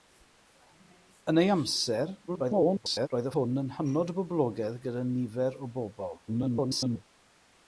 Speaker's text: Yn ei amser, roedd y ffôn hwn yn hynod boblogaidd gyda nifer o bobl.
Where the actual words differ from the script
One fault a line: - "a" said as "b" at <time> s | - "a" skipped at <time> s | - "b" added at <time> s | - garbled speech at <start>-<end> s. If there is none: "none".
- garbled speech at 2.3-3.1 s
- "ffôn" skipped at 3.3 s
- garbled speech at 6.3-7.1 s